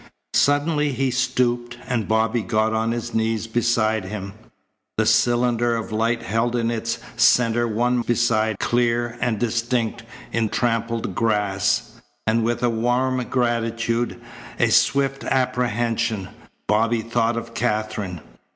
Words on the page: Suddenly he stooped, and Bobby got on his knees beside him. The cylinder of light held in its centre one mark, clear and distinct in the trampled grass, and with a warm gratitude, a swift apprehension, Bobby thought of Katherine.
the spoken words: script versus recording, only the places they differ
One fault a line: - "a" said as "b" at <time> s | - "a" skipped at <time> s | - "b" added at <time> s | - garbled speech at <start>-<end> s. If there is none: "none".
- "mark" said as "beside" at 8.0 s
- "the" skipped at 10.5 s